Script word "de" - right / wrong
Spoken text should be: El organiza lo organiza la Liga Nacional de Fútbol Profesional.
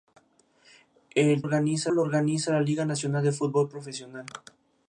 right